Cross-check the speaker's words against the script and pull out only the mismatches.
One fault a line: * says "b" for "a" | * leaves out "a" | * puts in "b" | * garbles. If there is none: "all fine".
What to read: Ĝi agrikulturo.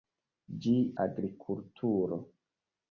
all fine